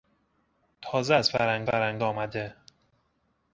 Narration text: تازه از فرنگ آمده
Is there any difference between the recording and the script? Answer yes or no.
yes